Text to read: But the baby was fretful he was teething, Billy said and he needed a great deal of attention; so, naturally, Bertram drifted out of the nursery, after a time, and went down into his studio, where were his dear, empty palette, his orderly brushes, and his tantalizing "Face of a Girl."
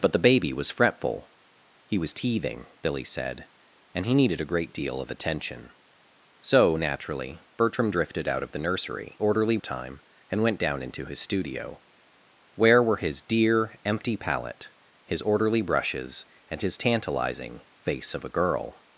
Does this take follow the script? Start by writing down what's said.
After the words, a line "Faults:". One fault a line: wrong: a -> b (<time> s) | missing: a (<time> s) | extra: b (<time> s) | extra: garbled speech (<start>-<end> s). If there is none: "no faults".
But the baby was fretful he was teething, Billy said and he needed a great deal of attention; so, naturally, Bertram drifted out of the nursery, orderly a time, and went down into his studio, where were his dear, empty palette, his orderly brushes, and his tantalizing "Face of a Girl."
Faults:
wrong: after -> orderly (9.2 s)